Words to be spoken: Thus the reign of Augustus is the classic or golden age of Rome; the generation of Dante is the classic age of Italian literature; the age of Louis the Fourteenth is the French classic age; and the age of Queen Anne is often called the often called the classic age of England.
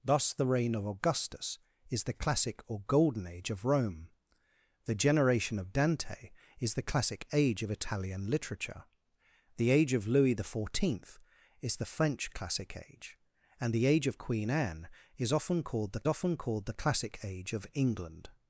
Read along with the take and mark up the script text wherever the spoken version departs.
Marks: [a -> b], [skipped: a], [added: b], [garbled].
Thus the reign of Augustus is the classic or golden age of Rome; the generation of Dante is the classic age of Italian literature; the age of Louis the Fourteenth is the French classic age; and the age of Queen Anne is often called the often called the classic age of England.